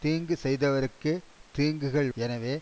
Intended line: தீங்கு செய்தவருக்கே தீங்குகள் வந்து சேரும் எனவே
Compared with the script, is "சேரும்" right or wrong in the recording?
wrong